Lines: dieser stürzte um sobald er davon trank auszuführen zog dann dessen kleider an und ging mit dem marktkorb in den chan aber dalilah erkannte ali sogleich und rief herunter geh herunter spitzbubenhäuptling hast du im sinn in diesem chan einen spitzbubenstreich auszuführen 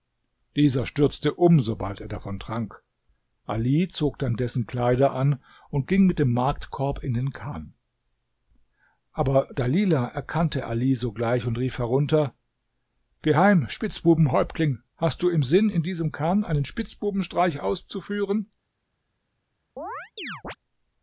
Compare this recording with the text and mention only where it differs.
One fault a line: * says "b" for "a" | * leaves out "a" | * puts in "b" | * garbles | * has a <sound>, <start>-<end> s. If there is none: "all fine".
* says "ali" for "auszuführen"
* says "heim" for "herunter"
* has a chirp, 19.8-20.6 s